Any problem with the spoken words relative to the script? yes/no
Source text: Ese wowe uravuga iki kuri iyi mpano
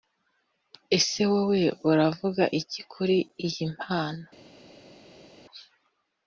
no